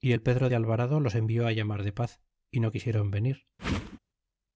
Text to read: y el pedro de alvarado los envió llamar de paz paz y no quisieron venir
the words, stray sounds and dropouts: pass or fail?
fail